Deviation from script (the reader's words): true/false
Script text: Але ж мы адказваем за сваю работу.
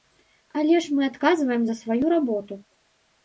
false